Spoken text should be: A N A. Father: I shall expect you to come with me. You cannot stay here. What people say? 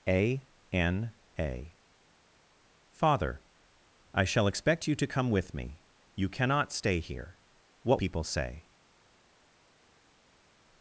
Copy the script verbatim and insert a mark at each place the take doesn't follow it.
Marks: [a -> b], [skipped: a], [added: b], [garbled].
A N A. Father: I shall expect you to come with me. You cannot stay here. What people say?